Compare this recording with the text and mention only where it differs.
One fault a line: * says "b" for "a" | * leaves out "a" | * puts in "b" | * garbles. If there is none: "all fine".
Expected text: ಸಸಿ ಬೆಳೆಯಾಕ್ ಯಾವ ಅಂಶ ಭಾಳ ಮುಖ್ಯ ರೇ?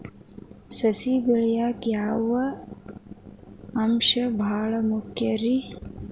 all fine